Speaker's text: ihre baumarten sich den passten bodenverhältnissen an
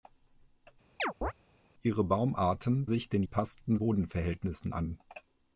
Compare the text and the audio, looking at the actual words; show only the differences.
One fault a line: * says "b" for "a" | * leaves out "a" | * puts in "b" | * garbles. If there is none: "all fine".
all fine